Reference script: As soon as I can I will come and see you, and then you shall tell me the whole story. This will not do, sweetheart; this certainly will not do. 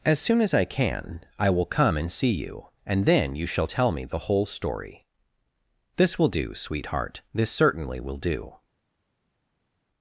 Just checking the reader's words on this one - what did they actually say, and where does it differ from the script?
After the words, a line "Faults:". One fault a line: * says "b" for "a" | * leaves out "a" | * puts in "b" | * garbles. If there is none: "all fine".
As soon as I can I will come and see you, and then you shall tell me the whole story. This will do, sweetheart; this certainly will do.
Faults:
* leaves out "not"
* leaves out "not"